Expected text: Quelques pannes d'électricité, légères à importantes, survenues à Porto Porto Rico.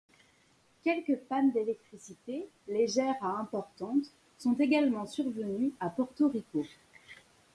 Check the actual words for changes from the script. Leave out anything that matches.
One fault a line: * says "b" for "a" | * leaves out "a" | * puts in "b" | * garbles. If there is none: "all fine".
* puts in "sont également"
* leaves out "Porto"